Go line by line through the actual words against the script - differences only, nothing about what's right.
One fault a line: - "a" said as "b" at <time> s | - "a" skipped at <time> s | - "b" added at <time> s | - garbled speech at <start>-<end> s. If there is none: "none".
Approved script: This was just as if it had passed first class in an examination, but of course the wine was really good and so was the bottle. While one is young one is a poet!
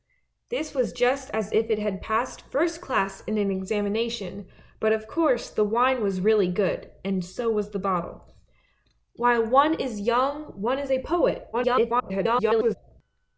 - garbled speech at 11.5-12.8 s